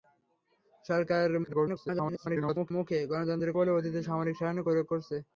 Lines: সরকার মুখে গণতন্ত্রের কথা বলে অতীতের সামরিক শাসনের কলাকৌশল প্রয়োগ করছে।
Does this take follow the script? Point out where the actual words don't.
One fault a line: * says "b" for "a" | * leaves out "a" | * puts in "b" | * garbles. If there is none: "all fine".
* garbles
* leaves out "কথা"
* leaves out "কলাকৌশল"